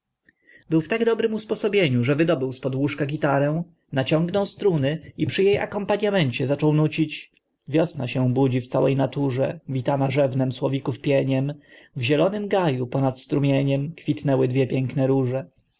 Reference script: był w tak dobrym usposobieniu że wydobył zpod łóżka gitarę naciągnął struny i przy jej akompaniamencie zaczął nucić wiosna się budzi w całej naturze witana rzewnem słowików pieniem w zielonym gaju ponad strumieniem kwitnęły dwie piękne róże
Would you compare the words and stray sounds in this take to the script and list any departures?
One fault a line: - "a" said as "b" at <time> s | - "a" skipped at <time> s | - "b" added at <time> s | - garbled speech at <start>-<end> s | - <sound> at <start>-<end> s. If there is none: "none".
none